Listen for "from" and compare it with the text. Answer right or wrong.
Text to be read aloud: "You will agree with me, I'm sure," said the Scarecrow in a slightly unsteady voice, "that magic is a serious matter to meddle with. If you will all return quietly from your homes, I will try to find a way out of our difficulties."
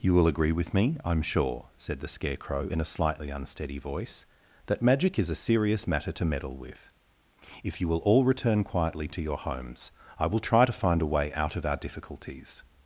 wrong